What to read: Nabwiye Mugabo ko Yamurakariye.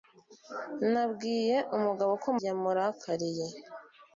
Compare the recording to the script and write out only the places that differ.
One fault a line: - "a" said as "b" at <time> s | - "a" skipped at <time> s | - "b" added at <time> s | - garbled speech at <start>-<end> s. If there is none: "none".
none